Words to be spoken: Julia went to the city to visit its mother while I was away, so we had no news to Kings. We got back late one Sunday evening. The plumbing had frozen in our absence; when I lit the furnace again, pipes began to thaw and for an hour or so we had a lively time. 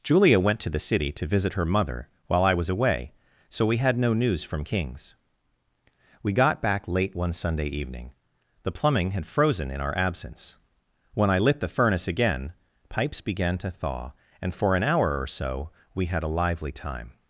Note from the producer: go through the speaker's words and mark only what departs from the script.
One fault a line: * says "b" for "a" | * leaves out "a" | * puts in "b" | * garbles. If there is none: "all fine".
* says "her" for "its"
* says "from" for "to"